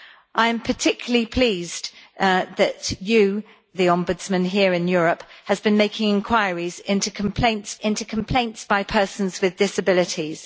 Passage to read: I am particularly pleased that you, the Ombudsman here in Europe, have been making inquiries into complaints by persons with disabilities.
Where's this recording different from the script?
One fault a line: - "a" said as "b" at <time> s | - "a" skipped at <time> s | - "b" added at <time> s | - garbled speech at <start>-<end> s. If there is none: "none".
- "into complaints" added at 7.8 s